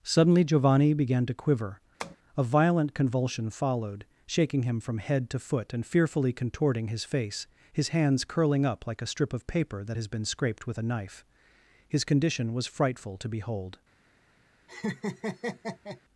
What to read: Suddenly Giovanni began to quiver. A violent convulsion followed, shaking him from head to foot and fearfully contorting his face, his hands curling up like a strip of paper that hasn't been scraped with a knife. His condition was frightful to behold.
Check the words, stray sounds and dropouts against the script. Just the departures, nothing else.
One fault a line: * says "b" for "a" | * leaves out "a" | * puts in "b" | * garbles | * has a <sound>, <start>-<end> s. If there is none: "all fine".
* has a tap, 2.0-2.2 s
* says "has" for "hasn't"
* has a laugh, 14.7-16.0 s